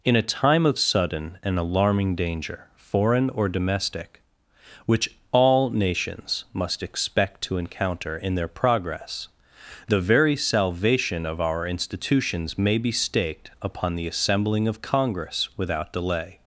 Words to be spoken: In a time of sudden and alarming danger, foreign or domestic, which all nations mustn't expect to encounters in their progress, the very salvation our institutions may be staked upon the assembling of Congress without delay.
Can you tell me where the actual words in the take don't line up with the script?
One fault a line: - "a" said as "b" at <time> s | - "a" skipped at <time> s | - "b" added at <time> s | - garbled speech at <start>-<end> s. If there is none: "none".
- "mustn't" said as "must" at 6.5 s
- "encounters" said as "encounter" at 7.6 s
- "of" added at 11.2 s